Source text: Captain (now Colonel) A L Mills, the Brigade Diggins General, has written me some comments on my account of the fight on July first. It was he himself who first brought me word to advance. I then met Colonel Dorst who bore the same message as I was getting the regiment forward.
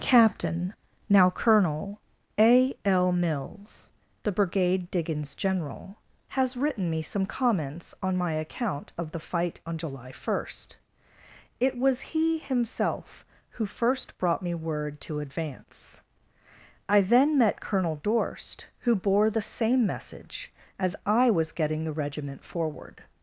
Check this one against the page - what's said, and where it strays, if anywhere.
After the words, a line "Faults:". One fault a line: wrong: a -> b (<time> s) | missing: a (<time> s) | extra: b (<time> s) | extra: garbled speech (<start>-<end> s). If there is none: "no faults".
Captain (now Colonel) A L Mills, the Brigade Diggins General, has written me some comments on my account of the fight on July first. It was he himself who first brought me word to advance. I then met Colonel Dorst who bore the same message as I was getting the regiment forward.
Faults:
no faults